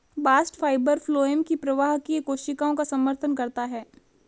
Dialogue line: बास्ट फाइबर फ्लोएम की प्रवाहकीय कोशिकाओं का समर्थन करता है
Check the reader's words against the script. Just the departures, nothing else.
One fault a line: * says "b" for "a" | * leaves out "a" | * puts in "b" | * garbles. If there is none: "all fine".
all fine